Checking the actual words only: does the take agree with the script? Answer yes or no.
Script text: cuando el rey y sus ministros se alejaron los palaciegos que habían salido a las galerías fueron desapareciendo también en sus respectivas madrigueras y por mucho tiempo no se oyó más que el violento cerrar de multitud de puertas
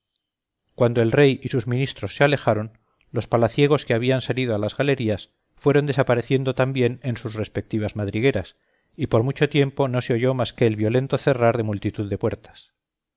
yes